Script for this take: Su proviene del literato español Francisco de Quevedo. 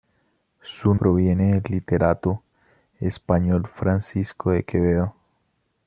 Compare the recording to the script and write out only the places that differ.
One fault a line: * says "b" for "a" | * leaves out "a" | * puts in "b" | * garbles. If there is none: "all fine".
all fine